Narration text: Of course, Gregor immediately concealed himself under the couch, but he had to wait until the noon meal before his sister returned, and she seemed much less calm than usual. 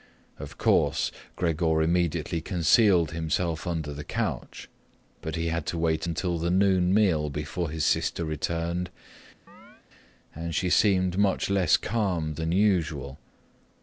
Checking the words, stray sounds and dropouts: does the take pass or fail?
fail